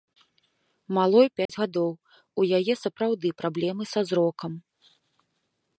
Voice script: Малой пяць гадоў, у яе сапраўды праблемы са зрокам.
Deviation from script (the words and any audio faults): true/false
true